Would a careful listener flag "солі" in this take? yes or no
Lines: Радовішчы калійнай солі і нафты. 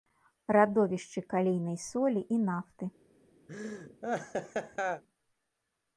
no